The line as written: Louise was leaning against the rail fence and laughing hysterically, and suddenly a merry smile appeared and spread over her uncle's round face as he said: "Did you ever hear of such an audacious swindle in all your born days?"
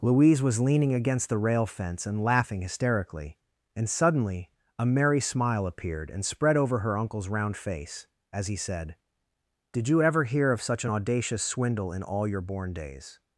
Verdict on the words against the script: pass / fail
pass